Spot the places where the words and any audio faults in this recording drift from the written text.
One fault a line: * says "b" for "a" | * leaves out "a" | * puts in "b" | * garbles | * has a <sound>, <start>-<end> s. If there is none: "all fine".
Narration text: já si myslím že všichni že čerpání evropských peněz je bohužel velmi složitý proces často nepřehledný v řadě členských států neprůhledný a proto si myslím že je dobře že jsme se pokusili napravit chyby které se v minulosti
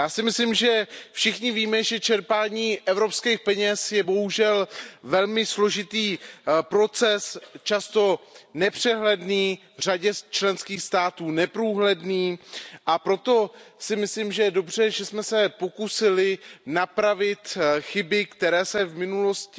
* puts in "víme"